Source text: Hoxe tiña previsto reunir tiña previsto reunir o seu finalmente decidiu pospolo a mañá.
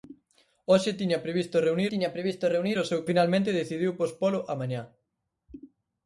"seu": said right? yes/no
yes